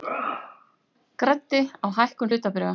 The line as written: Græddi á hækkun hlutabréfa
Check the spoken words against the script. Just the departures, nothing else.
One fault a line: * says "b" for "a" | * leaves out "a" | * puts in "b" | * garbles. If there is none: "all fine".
all fine